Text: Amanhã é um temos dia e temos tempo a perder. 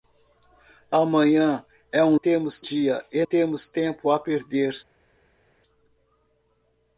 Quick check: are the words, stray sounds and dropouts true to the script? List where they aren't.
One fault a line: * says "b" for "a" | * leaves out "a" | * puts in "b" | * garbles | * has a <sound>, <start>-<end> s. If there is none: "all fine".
all fine